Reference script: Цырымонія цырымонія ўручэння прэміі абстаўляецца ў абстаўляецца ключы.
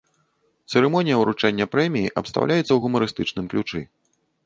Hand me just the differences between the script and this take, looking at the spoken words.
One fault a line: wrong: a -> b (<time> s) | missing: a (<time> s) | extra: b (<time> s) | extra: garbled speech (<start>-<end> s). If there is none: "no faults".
missing: цырымонія (1.2 s)
wrong: абстаўляецца -> гумарыстычным (2.9 s)